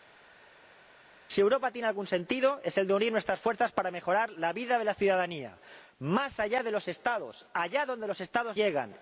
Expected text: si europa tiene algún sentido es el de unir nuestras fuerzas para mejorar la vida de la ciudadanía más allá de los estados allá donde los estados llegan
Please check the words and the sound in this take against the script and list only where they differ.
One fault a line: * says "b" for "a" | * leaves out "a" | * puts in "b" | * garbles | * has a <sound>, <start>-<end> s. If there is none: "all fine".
all fine